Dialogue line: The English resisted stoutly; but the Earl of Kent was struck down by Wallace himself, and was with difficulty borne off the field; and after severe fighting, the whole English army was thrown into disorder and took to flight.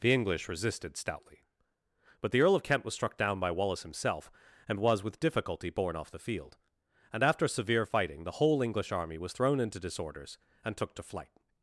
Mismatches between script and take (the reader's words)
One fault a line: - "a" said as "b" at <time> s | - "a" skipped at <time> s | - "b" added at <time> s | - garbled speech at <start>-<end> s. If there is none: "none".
- "disorder" said as "disorders" at 9.8 s